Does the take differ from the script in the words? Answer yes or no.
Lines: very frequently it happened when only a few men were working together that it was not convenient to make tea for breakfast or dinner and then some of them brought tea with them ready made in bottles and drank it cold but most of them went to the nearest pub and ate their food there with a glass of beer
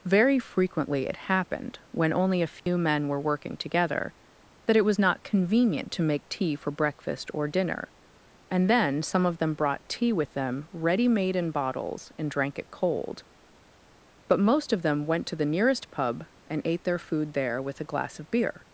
no